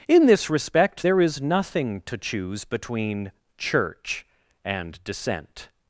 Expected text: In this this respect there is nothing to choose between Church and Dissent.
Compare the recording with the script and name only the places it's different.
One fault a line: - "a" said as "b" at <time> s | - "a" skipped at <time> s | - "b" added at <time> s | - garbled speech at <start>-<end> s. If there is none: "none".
- "this" skipped at 0.5 s